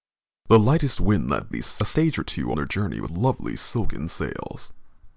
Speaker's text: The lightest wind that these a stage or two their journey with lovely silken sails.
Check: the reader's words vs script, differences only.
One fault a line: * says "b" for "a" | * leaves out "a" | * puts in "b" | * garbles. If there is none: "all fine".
all fine